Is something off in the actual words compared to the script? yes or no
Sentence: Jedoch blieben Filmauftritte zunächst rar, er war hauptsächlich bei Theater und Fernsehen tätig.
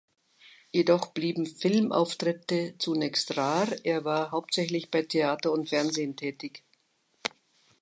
no